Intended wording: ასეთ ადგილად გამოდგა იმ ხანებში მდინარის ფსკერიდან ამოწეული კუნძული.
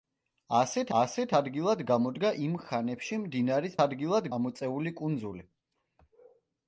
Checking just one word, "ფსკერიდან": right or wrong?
wrong